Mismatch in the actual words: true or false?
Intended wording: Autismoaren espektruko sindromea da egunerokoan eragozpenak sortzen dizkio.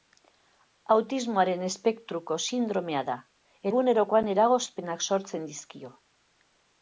false